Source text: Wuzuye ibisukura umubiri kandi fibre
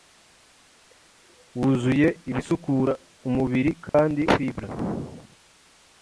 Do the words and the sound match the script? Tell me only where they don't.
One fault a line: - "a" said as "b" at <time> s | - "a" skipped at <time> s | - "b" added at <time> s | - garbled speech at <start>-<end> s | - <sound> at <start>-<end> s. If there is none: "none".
- dropout at 3.9-3.9 s